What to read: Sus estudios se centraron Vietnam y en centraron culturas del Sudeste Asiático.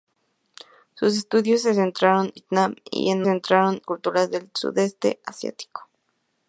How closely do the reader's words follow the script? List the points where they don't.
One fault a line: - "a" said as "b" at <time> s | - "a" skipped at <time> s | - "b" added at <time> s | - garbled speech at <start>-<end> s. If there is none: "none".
none